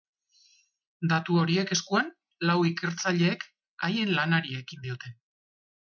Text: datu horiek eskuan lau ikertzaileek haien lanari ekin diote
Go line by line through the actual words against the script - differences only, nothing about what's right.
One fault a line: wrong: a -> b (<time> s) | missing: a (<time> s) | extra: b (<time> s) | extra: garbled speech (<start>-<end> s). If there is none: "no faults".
no faults